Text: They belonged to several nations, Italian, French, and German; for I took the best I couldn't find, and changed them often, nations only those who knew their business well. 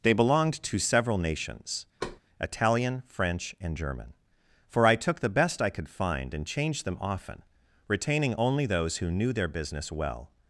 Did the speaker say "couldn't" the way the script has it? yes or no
no